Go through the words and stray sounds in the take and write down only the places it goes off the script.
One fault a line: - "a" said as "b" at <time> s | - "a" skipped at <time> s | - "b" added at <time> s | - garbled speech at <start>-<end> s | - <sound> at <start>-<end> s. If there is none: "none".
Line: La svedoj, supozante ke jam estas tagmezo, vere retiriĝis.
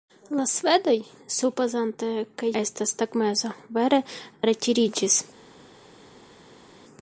- "jam" skipped at 2.5 s